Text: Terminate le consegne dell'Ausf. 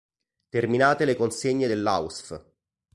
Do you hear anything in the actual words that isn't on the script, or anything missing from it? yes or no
no